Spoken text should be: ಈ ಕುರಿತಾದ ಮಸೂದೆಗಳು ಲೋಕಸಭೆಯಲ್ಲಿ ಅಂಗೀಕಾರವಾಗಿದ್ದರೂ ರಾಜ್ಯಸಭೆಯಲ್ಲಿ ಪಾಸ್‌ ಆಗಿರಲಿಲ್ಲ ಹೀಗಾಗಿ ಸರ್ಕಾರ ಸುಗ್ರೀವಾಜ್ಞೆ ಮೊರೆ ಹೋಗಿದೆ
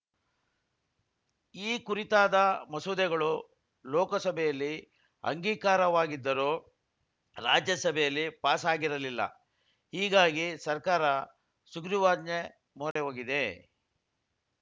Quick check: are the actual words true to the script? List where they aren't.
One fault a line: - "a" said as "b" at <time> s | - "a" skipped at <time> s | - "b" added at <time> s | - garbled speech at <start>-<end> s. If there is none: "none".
none